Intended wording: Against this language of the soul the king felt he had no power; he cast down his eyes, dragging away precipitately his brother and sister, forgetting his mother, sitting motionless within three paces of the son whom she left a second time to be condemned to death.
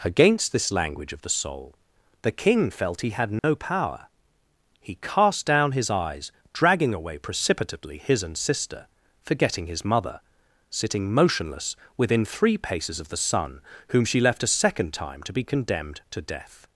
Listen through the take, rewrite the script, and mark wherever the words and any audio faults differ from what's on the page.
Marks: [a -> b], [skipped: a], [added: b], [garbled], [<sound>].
Against this language of the soul the king felt he had no [dropout] power; he cast down his eyes, dragging away precipitately his [skipped: brother] and sister, forgetting his mother, sitting motionless within three paces of the son whom she left a second time to be condemned to death.